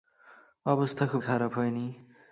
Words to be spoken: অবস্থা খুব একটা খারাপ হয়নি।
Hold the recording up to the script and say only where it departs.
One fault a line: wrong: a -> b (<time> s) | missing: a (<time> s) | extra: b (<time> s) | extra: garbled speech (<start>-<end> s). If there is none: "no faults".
missing: একটা (1.2 s)